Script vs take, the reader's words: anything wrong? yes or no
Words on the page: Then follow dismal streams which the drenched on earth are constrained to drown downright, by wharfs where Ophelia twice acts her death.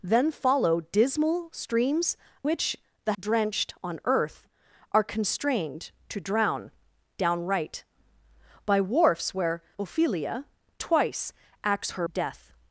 no